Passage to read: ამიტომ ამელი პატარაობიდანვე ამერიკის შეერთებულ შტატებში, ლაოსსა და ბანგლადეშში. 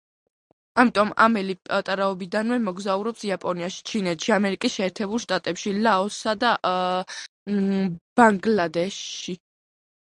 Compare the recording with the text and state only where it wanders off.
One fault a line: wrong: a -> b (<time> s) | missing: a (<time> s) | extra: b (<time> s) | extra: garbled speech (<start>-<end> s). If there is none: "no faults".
extra: მოგზაურობს იაპონიაში ჩინეთში (2.7 s)